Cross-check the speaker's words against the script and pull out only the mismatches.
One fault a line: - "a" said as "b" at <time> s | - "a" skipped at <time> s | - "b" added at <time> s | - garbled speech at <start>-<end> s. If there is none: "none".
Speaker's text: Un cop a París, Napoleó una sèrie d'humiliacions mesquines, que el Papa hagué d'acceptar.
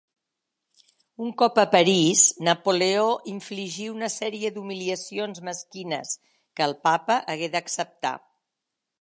- "infligí" added at 3.3 s